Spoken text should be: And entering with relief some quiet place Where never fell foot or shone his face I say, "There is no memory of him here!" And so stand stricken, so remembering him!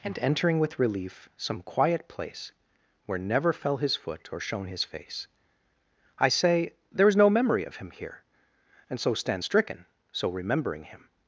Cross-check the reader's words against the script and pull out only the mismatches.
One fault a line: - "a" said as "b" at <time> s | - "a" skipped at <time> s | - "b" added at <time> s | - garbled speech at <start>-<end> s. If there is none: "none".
- "his" added at 3.8 s